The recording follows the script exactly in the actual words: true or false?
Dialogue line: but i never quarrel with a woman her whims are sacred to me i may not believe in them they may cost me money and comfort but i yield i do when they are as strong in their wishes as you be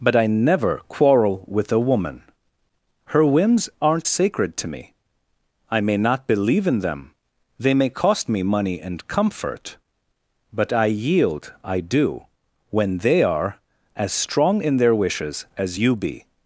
false